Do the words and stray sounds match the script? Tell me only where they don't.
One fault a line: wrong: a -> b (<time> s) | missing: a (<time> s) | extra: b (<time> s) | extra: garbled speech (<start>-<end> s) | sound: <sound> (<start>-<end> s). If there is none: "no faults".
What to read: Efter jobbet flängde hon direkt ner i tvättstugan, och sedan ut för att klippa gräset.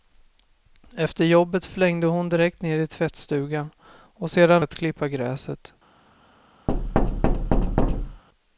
missing: ut för (4.6 s)
sound: thud (6.7-8.2 s)